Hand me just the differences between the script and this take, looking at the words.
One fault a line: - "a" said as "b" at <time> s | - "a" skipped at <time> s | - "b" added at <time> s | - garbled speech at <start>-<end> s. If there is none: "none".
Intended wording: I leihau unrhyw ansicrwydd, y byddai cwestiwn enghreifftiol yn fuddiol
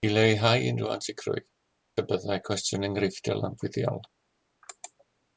none